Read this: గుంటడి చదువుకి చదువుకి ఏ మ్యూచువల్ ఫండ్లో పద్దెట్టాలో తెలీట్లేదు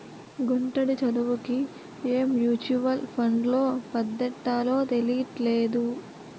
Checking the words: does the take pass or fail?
fail